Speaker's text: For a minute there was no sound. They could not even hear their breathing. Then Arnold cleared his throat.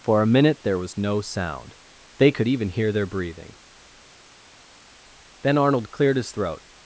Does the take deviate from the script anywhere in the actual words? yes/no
yes